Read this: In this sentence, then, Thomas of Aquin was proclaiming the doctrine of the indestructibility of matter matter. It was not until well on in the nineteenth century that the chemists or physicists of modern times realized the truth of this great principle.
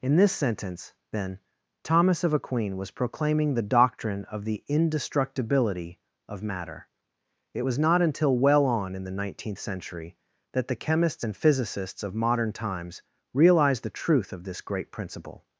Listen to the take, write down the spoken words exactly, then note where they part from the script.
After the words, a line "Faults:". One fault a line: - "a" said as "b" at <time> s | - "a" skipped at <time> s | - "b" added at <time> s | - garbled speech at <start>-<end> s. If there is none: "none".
In this sentence, then, Thomas of Aquin was proclaiming the doctrine of the indestructibility of matter. It was not until well on in the nineteenth century that the chemists and physicists of modern times realized the truth of this great principle.
Faults:
- "matter" skipped at 6.9 s
- "or" said as "and" at 11.2 s